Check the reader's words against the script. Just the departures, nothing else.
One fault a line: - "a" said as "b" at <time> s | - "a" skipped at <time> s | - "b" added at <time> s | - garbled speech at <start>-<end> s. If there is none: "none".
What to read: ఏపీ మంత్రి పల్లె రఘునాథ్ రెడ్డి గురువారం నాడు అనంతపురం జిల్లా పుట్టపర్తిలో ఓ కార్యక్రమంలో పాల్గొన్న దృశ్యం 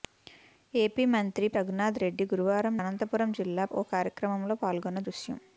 - "పల్లె" skipped at 1.5 s
- "నాడు" skipped at 2.7 s
- "పుట్టపర్తిలో" skipped at 3.7 s